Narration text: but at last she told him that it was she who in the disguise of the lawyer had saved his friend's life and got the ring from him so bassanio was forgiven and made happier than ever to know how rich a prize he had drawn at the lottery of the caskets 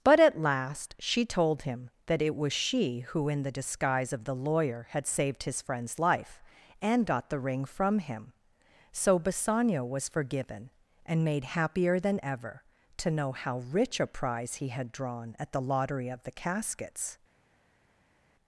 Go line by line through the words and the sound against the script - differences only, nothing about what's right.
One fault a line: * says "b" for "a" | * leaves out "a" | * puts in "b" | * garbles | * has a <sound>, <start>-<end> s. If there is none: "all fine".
all fine